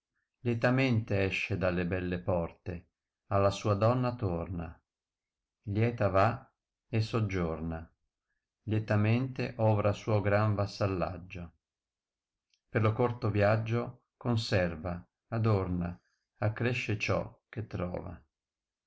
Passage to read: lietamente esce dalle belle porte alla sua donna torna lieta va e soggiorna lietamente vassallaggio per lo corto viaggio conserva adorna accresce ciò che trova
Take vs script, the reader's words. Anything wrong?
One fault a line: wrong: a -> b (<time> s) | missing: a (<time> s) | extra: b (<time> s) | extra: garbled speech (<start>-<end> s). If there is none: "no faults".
extra: ovra suo gran (9.6 s)